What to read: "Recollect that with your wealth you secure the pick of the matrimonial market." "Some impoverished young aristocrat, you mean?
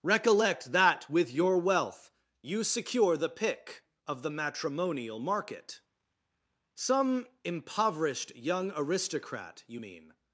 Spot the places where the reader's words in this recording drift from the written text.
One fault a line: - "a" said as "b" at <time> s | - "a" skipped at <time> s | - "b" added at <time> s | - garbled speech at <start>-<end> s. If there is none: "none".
none